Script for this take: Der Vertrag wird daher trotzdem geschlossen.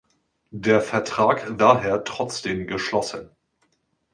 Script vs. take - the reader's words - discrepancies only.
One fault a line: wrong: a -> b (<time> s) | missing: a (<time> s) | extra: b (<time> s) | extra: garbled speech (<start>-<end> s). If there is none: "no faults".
missing: wird (1.6 s)